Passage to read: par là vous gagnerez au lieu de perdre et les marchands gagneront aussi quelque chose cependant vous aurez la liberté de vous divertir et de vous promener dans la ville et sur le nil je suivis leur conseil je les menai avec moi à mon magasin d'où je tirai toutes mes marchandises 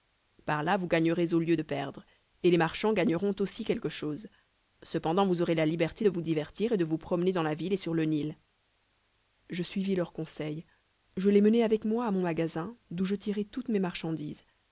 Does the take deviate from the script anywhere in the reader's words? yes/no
no